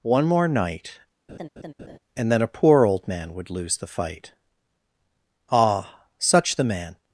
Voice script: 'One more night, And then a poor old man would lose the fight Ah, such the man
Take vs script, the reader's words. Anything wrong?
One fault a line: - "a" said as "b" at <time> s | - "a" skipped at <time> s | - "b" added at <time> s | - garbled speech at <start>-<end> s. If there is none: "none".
none